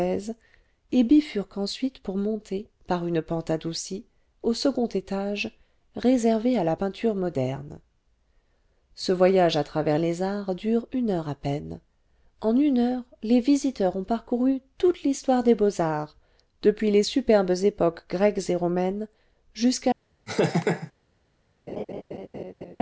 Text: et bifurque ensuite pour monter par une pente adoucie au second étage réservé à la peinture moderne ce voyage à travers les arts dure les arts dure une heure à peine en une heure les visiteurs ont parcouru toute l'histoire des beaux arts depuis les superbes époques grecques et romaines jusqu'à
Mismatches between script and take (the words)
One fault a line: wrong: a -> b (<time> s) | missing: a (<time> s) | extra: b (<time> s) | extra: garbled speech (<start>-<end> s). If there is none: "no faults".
missing: les arts dure (10.9 s)